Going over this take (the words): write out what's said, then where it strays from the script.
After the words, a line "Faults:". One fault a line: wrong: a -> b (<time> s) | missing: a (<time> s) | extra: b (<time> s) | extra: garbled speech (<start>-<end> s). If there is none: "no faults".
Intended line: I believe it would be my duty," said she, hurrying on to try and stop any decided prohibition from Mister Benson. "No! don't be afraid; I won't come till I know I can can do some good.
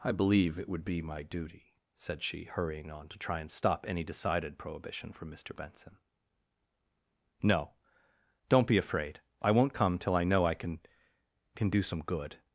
I believe it would be my duty," said she, hurrying on to try and stop any decided prohibition from Mister Benson. "No! don't be afraid; I won't come till I know I can can do some good.
Faults:
no faults